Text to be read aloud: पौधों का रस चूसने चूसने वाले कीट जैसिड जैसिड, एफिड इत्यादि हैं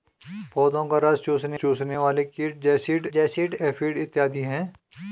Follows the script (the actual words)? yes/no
yes